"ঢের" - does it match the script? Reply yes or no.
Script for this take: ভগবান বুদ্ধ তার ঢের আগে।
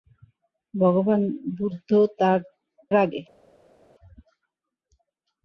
no